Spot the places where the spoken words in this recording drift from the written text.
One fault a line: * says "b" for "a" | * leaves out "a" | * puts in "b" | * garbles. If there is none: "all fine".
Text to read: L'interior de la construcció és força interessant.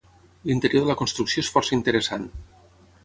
all fine